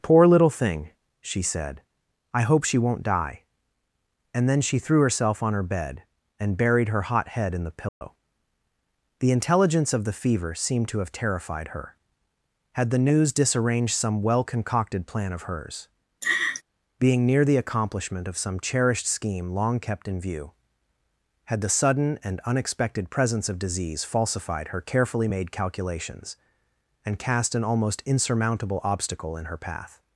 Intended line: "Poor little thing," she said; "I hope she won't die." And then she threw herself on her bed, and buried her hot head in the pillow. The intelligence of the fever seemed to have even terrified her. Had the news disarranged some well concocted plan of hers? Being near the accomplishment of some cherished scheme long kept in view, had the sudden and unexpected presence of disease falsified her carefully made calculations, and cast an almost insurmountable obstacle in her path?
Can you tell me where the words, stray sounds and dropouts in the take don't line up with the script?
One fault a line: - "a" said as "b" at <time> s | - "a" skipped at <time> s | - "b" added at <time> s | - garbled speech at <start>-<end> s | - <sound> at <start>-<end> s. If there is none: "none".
- dropout at 7.9-8.0 s
- "even" skipped at 11.1 s
- laugh at 16.2-16.6 s